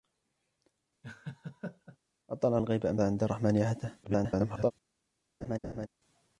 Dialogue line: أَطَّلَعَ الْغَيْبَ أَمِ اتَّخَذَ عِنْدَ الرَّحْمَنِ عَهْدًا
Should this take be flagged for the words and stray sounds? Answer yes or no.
yes